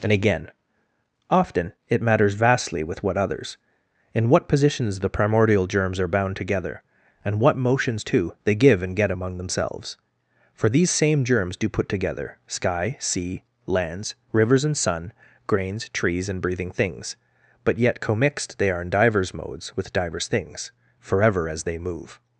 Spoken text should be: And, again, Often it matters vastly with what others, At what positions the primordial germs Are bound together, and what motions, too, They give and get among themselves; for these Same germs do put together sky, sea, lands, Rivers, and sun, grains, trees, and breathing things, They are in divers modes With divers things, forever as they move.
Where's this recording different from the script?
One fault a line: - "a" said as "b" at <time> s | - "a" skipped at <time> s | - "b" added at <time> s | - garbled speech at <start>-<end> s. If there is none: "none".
- "At" said as "In" at 4.1 s
- "But yet commixed" added at 17.6 s